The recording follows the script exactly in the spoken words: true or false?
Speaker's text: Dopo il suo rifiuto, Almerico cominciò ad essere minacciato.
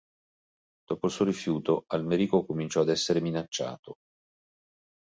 true